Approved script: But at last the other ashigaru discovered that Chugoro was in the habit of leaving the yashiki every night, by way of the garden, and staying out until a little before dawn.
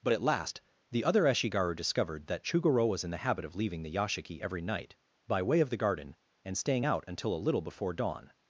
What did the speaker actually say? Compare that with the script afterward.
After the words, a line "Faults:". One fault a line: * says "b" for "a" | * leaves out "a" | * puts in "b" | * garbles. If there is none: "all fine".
But at last the other ashigaru discovered that Chugoro was in the habit of leaving the yashiki every night, by way of the garden, and staying out until a little before dawn.
Faults:
all fine